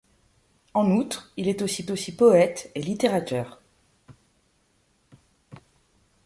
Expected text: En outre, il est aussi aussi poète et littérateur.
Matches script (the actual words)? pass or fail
pass